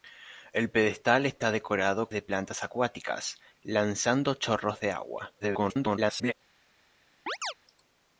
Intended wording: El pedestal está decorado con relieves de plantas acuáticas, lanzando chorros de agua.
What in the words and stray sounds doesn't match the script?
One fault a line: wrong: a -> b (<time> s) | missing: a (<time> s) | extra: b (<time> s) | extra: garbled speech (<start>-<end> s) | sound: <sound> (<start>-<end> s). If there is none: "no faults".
missing: con relieves (2.1 s)
extra: garbled speech (5.4-6.3 s)
sound: chirp (7.3-7.5 s)